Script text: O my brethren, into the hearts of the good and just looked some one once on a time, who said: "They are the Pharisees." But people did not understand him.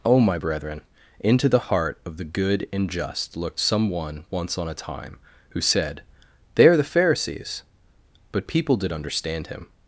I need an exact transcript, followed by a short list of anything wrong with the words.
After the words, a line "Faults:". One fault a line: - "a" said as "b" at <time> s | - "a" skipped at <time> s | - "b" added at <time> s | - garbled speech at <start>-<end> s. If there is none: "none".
O my brethren, into the heart of the good and just looked some one once on a time, who said: "They are the Pharisees." But people did understand him.
Faults:
- "hearts" said as "heart" at 1.6 s
- "not" skipped at 8.9 s